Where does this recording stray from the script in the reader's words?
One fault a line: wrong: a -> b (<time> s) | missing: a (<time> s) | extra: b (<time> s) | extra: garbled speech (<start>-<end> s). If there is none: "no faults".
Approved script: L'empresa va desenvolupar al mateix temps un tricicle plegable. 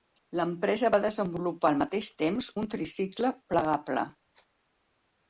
no faults